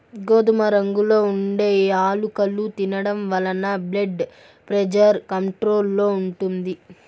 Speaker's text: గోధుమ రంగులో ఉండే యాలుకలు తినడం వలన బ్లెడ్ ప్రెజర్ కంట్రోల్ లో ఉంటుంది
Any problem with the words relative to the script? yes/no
no